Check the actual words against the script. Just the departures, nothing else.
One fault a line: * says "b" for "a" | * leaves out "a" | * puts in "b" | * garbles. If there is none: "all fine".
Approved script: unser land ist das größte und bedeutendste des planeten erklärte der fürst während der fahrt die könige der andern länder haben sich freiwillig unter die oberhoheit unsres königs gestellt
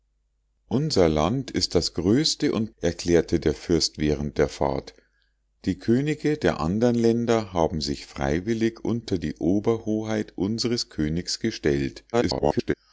* leaves out "bedeutendste des planeten"
* garbles